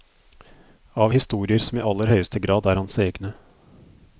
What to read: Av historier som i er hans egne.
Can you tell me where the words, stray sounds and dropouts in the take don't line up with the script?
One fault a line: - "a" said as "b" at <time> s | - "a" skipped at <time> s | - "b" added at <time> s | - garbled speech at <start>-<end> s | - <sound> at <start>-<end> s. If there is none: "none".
- "aller høyeste grad" added at 1.9 s